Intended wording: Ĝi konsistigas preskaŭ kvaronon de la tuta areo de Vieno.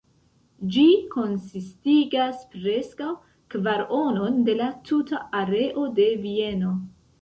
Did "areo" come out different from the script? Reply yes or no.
no